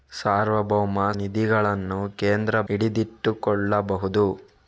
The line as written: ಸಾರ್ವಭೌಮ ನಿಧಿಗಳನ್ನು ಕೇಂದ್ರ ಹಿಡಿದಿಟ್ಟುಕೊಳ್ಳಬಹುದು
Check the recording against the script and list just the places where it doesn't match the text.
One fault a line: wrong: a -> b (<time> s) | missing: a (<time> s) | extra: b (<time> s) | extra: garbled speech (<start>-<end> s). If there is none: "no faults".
no faults